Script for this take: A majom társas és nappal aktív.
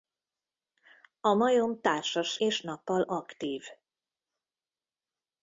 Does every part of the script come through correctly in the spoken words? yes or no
yes